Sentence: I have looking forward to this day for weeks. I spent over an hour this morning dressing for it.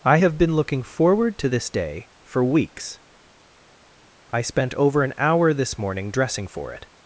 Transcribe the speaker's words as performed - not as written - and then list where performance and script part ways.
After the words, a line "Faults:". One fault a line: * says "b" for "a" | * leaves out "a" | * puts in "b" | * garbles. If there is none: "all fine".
I have been looking forward to this day for weeks. I spent over an hour this morning dressing for it.
Faults:
* puts in "been"